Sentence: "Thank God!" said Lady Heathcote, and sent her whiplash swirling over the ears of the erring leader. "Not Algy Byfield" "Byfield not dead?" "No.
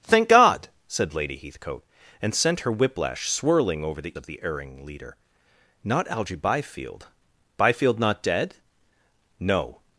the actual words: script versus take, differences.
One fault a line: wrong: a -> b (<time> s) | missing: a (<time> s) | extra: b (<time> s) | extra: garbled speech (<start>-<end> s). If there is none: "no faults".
missing: ears (4.2 s)